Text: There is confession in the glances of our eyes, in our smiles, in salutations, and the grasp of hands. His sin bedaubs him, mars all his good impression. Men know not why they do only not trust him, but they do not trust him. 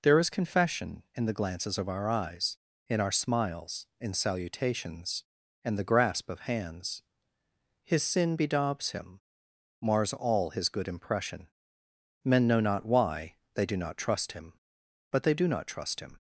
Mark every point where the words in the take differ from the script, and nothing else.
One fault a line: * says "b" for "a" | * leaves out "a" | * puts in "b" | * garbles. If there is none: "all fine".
* leaves out "only"